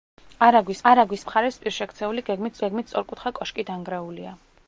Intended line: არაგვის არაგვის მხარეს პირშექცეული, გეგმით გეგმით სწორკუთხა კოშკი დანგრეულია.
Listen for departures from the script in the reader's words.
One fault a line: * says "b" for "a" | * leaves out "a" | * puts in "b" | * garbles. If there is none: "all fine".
all fine